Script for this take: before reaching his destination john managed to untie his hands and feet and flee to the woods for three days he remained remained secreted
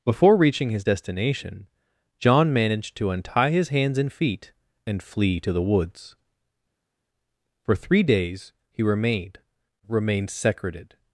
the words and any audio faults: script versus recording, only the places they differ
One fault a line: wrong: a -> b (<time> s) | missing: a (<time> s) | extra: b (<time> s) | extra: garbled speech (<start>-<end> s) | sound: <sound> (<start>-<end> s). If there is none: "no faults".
no faults